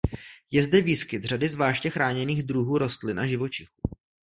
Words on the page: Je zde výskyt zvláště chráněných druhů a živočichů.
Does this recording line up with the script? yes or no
no